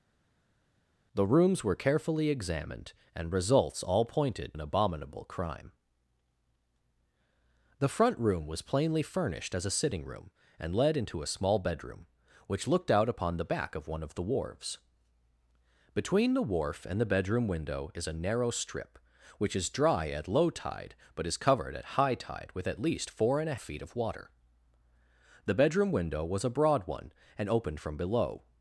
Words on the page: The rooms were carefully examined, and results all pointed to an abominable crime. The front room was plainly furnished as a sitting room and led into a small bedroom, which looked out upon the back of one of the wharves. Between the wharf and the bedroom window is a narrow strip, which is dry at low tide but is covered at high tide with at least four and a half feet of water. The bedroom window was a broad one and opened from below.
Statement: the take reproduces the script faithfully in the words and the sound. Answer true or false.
false